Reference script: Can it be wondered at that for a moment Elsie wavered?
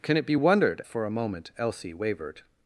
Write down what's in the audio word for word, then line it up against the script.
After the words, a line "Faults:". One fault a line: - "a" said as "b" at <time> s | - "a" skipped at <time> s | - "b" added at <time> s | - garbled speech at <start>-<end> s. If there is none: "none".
Can it be wondered for a moment Elsie wavered?
Faults:
- "at that" skipped at 0.8 s